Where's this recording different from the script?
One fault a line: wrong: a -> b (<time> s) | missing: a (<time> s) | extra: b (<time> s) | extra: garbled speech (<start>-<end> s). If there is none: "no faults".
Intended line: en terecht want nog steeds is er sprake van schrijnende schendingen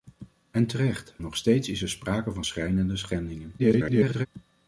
missing: want (1.1 s)
extra: garbled speech (3.6-4.3 s)